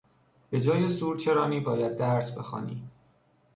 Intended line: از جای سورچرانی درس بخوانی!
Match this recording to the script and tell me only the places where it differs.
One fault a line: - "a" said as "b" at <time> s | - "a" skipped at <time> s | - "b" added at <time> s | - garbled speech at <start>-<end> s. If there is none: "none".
- "از" said as "به" at 0.5 s
- "باید" added at 1.6 s